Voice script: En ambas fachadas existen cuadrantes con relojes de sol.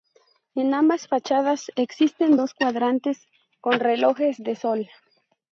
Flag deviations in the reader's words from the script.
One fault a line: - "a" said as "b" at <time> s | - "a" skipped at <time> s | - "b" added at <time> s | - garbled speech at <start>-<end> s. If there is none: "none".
- "dos" added at 2.3 s